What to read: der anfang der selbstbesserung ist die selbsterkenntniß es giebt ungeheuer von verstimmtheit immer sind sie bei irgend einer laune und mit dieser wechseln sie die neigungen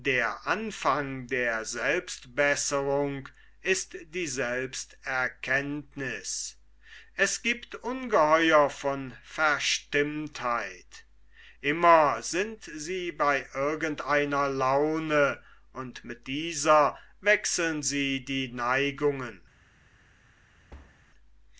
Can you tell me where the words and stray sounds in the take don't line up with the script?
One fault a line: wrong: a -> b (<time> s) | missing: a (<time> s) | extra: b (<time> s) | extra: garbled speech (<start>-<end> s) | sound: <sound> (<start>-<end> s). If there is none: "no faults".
sound: thud (20.7-21.0 s)